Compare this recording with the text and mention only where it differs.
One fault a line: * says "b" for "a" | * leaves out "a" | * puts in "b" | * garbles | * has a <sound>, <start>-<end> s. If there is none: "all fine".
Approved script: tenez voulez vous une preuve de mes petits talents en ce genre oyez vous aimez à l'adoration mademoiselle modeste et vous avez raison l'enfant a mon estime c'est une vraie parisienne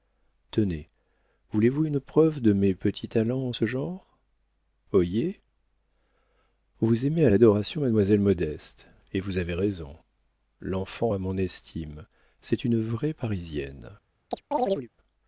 * has a chirp, 14.3-14.9 s